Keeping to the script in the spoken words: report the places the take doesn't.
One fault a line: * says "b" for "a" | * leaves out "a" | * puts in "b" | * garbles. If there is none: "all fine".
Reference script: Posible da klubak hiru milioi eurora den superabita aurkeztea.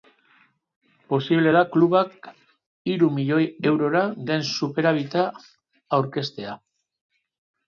all fine